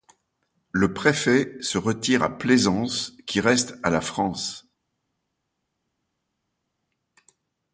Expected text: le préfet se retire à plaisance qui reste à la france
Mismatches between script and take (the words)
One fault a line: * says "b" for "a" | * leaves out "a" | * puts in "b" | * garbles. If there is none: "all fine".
all fine